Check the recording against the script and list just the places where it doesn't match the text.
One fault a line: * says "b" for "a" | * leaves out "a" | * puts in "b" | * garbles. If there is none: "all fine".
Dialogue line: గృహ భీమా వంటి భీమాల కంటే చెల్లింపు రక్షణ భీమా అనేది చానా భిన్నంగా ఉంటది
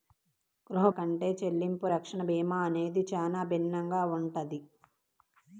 * leaves out "భీమా వంటి భీమాల"